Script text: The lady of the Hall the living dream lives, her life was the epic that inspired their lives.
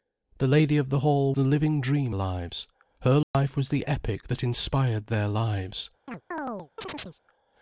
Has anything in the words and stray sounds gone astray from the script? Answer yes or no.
yes